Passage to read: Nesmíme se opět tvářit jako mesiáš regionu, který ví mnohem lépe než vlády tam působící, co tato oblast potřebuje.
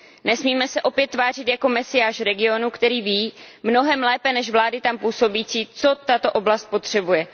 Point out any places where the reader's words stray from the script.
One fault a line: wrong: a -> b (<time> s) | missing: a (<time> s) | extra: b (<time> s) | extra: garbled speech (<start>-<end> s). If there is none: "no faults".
no faults